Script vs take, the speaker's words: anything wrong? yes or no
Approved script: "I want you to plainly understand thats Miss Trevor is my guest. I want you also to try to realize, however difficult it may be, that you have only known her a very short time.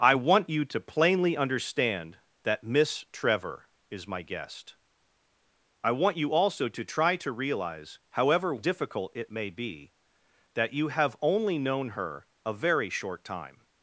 yes